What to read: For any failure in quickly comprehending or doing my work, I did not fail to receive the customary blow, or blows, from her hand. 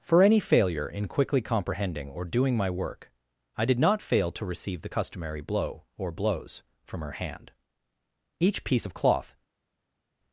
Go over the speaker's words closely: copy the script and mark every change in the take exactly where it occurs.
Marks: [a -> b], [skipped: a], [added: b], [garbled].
For any failure in quickly comprehending or doing my work, I did not fail to receive the customary blow, or blows, from her hand. [added: Each piece of cloth]